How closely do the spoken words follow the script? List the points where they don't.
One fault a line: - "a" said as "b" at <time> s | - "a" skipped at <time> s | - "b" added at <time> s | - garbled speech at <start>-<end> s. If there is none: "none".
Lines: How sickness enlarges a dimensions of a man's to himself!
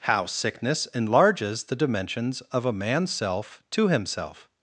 - "a" said as "the" at 1.6 s
- "self" added at 3.1 s